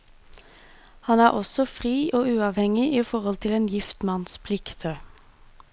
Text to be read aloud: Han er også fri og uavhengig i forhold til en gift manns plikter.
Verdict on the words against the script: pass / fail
pass